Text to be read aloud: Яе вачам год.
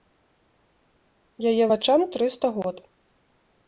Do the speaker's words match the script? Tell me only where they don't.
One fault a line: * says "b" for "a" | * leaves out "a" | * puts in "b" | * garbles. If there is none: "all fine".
* puts in "трыста"